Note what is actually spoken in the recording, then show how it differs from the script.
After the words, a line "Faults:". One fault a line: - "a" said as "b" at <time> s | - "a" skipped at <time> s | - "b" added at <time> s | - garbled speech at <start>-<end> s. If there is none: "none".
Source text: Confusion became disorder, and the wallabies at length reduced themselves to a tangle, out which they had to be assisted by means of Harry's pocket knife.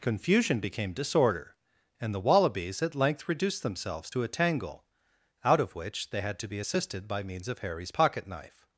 Confusion became disorder, and the wallabies at length reduced themselves to a tangle, out of which they had to be assisted by means of Harry's pocket knife.
Faults:
- "of" added at 5.6 s